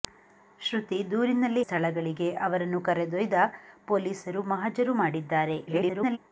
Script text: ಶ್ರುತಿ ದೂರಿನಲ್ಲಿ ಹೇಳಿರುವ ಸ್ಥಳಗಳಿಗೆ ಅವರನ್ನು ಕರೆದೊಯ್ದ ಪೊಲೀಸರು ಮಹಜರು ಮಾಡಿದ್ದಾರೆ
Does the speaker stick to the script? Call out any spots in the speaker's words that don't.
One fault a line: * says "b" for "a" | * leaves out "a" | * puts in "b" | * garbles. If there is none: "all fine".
* leaves out "ಹೇಳಿರುವ"
* garbles